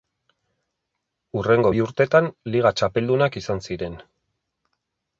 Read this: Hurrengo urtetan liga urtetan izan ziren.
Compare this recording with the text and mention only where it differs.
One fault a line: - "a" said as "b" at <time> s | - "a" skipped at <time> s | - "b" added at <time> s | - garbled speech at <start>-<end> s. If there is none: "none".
- "bi" added at 1.7 s
- "urtetan" said as "txapeldunak" at 2.8 s